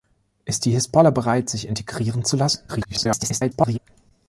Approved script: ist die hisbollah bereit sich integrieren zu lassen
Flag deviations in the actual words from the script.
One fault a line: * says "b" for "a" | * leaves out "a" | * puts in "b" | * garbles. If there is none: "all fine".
* garbles